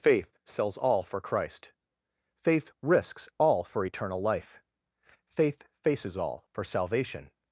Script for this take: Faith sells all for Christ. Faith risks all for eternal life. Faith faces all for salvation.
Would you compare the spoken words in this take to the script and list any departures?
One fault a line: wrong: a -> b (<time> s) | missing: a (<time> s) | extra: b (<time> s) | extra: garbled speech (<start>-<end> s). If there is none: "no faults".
no faults